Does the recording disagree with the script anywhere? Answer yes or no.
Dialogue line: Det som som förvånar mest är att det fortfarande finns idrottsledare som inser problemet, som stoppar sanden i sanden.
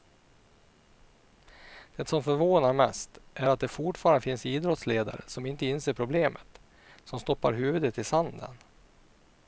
yes